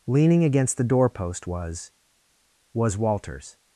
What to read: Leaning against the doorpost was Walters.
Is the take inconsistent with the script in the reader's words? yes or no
yes